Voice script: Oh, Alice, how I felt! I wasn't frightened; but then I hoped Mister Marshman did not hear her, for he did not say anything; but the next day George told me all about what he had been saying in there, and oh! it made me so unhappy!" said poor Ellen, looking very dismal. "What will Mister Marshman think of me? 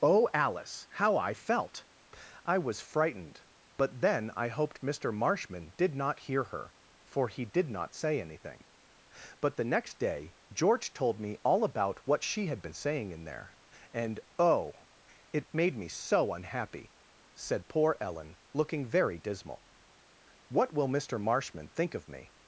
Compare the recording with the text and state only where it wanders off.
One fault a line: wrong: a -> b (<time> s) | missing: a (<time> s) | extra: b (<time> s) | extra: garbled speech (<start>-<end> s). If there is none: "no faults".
wrong: wasn't -> was (2.6 s)
wrong: he -> she (12.2 s)